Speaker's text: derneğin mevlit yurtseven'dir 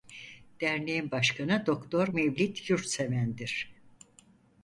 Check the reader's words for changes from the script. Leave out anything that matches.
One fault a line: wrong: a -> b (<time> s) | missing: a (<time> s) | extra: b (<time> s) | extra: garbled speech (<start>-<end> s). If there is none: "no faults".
extra: başkanı doktor (1.1 s)